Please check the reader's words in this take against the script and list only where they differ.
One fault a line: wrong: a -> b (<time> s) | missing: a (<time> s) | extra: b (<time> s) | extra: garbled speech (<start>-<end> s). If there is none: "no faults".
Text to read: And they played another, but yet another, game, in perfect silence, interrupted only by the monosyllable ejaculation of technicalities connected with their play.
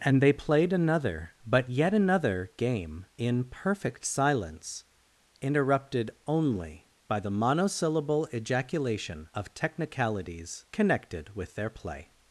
no faults